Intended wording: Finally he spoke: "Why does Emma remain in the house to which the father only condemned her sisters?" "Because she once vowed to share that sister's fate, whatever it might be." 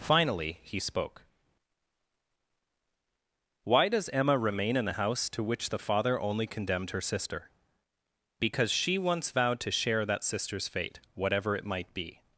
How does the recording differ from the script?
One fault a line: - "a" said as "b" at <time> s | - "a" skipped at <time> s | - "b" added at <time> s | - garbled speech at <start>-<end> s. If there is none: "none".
- "sisters" said as "sister" at 7.0 s